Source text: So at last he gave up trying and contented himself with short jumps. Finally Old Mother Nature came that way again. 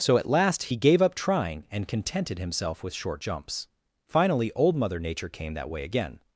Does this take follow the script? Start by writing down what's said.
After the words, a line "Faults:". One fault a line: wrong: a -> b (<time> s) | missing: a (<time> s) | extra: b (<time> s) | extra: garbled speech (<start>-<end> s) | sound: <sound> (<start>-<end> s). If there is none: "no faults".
So at last he gave up trying and contented himself with short jumps. Finally Old Mother Nature came that way again.
Faults:
no faults